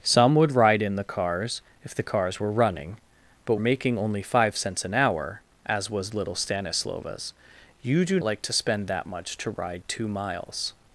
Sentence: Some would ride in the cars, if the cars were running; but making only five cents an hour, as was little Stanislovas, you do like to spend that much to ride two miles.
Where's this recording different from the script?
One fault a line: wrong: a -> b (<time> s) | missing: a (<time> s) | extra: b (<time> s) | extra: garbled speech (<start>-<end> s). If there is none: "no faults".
no faults